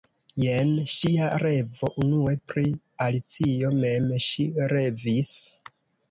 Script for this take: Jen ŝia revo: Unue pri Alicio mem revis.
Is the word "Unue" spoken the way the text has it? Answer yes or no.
yes